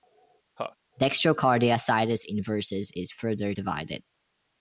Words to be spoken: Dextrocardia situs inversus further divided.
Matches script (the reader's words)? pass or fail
fail